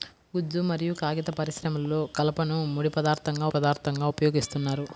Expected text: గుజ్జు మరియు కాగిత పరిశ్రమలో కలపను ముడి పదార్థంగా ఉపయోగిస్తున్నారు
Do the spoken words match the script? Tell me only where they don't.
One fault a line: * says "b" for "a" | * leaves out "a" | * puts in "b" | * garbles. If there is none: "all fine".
* puts in "పదార్థంగా"